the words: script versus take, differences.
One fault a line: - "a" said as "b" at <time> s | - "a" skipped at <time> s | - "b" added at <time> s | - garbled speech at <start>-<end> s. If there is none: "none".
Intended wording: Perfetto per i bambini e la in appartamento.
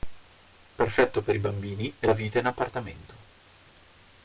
- "vita" added at 2.1 s